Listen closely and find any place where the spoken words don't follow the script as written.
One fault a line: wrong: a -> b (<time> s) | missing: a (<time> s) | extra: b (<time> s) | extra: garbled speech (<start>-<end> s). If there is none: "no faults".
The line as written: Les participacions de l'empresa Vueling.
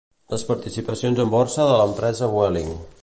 extra: en borsa (1.2 s)